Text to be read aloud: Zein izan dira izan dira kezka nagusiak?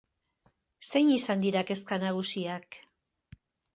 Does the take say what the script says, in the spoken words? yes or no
no